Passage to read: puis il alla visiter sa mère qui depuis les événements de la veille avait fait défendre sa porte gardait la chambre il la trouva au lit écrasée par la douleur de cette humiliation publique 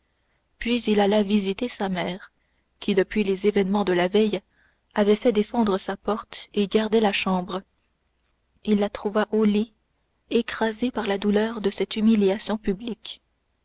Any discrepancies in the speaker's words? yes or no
yes